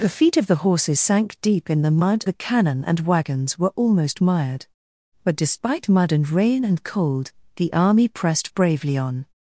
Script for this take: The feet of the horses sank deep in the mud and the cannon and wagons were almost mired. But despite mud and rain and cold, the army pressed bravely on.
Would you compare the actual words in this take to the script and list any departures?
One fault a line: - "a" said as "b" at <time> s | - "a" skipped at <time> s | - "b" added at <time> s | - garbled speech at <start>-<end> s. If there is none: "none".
- "and" skipped at 2.2 s